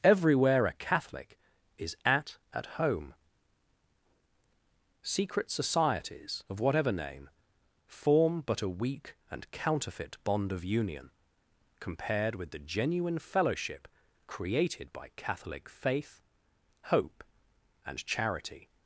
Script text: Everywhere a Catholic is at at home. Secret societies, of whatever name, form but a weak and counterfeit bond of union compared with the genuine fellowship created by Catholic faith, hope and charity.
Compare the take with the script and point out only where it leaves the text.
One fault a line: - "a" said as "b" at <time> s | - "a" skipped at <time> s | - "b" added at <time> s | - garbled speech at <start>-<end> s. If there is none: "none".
none